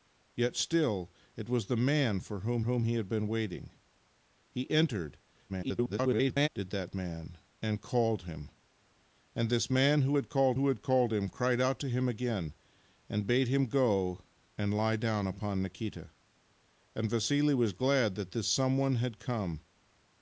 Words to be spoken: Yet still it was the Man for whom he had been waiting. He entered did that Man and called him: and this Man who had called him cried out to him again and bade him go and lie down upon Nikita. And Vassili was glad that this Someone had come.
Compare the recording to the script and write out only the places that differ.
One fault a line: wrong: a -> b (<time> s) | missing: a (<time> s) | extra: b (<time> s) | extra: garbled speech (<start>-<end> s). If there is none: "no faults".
extra: whom (2.6 s)
extra: garbled speech (5.5-6.5 s)
extra: who had called (10.5 s)